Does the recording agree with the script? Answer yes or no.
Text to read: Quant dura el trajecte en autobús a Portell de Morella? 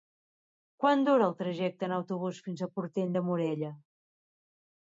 no